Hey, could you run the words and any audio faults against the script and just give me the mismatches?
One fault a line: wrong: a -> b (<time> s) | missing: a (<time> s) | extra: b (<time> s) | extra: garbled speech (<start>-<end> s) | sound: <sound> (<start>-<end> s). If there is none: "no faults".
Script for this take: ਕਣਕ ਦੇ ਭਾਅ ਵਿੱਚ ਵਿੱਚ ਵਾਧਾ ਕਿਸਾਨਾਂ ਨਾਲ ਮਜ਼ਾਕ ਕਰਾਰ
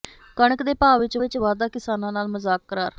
no faults